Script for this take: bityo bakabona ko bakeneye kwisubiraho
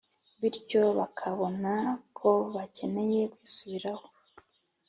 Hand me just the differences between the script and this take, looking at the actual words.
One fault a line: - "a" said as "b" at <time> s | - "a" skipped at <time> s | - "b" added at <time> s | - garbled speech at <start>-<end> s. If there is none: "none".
none